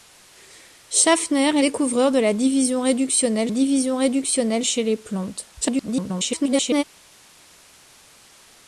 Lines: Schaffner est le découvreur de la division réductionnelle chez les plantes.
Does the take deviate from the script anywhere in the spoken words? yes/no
yes